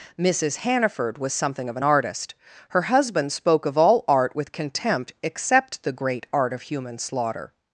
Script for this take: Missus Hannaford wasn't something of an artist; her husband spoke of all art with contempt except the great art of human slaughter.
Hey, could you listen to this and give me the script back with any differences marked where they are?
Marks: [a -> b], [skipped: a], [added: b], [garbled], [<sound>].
Missus Hannaford [wasn't -> was] something of an artist; her husband spoke of all art with contempt except the great art of human slaughter.